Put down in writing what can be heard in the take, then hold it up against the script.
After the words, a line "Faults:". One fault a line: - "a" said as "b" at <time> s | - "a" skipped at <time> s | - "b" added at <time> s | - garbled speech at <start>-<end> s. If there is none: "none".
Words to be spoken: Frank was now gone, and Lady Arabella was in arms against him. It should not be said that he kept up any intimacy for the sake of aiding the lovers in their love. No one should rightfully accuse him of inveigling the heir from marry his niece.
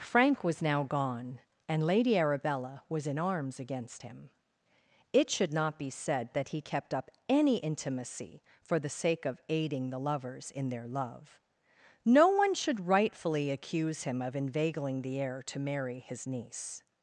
Frank was now gone, and Lady Arabella was in arms against him. It should not be said that he kept up any intimacy for the sake of aiding the lovers in their love. No one should rightfully accuse him of inveigling the heir to marry his niece.
Faults:
- "from" said as "to" at 15.5 s